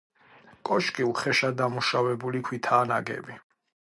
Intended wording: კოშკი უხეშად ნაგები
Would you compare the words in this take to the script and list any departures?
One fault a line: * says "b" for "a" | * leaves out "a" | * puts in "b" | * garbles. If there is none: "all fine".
* puts in "დამუშავებული ქვითაა"